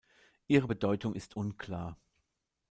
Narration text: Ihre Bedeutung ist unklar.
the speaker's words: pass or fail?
pass